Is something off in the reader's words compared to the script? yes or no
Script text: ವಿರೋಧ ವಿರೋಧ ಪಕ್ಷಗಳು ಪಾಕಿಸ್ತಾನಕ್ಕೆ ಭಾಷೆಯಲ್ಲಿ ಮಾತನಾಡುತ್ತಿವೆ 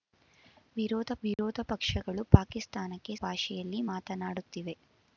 no